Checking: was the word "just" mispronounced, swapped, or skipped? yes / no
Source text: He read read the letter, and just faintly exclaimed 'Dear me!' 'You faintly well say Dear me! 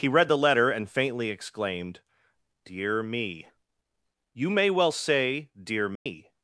yes